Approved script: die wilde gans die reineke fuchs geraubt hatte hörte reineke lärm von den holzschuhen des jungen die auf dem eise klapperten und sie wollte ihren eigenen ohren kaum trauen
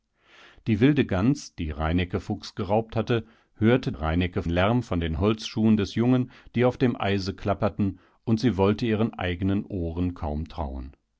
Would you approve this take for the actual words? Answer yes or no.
yes